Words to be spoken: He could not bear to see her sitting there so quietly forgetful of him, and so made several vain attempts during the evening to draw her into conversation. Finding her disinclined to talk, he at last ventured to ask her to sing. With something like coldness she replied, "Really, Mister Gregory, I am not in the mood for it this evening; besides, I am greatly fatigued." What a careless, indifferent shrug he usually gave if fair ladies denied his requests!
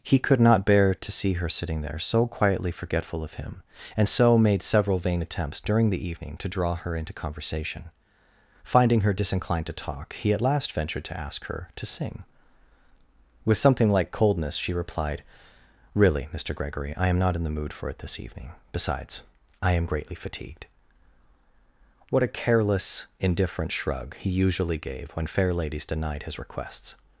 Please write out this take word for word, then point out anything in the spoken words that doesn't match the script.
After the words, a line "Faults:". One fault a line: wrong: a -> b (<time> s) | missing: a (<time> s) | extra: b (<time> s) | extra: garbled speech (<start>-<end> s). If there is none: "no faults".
He could not bear to see her sitting there so quietly forgetful of him, and so made several vain attempts during the evening to draw her into conversation. Finding her disinclined to talk, he at last ventured to ask her to sing. With something like coldness she replied, "Really, Mister Gregory, I am not in the mood for it this evening; besides, I am greatly fatigued." What a careless, indifferent shrug he usually gave when fair ladies denied his requests!
Faults:
wrong: if -> when (25.1 s)